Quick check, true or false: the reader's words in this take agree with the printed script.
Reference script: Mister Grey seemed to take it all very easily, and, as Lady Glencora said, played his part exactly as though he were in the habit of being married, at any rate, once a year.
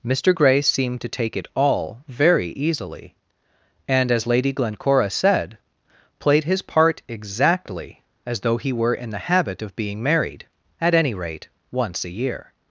true